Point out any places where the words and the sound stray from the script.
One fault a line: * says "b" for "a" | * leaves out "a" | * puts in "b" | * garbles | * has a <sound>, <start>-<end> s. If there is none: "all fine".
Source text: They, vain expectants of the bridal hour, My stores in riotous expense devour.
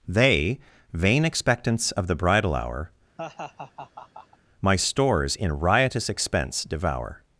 * has a laugh, 3.2-4.4 s